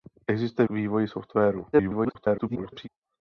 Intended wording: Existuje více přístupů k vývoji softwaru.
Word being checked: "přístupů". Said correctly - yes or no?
no